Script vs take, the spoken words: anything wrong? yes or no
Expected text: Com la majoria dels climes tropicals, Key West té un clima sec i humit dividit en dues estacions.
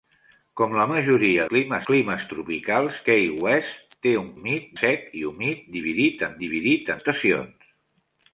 yes